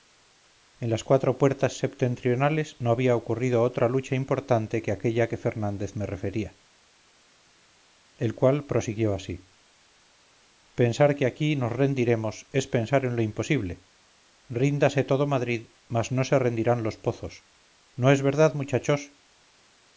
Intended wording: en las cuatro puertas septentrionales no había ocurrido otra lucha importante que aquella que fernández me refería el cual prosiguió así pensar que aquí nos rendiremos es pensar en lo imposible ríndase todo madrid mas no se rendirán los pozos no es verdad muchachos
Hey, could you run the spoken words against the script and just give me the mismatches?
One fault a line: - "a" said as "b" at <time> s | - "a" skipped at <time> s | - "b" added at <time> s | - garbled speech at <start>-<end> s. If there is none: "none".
none